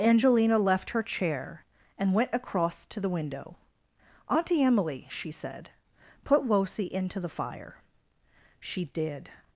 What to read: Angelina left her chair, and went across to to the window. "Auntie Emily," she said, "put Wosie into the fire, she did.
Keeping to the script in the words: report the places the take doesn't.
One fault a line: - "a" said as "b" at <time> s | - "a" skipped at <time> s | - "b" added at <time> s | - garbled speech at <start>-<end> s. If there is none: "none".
- "to" skipped at 3.0 s